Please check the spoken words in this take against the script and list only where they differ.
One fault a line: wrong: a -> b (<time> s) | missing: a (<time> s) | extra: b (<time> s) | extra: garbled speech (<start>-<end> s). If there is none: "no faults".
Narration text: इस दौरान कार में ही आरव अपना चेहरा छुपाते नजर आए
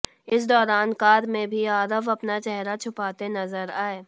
wrong: ही -> भी (1.5 s)